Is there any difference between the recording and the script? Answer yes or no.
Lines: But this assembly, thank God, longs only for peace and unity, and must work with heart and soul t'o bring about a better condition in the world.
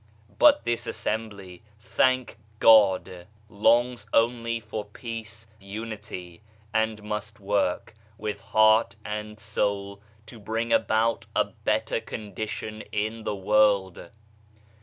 yes